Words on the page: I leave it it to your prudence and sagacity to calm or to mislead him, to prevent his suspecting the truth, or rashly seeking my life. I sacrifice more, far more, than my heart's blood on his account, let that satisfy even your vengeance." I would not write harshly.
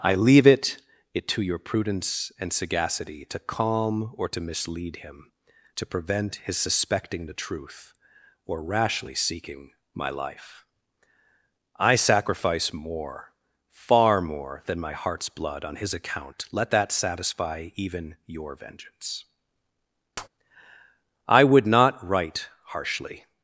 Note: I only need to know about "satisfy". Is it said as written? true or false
true